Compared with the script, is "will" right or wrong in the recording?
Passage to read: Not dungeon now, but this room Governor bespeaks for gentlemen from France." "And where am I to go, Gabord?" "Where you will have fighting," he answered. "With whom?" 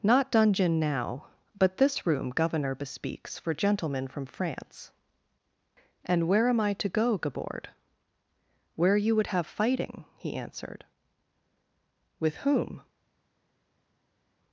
wrong